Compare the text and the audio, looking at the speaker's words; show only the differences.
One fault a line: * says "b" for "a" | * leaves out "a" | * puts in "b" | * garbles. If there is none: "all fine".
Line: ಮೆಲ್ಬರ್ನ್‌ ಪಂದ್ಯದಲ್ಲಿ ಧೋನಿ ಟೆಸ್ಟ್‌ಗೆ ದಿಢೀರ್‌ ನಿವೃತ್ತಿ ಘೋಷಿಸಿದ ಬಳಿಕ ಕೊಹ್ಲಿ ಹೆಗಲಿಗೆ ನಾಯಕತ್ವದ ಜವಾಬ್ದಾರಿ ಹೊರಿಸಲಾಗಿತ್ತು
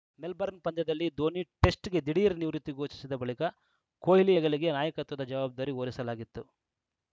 all fine